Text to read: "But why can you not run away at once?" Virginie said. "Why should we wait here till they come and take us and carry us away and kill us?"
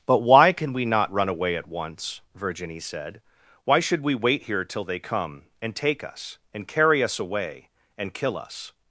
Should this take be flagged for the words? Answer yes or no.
yes